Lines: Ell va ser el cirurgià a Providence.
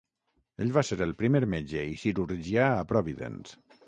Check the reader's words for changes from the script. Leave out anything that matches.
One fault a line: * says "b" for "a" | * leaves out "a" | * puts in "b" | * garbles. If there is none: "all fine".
* puts in "primer metge i"